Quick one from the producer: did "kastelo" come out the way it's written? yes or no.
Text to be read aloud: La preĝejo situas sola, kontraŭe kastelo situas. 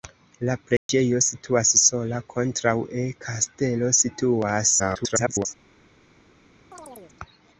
yes